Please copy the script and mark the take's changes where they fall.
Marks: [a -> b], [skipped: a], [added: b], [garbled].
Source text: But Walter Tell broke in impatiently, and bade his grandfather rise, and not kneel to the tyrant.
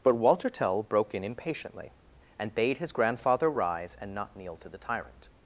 But Walter Tell broke in impatiently, and bade his grandfather rise, and not kneel to the tyrant.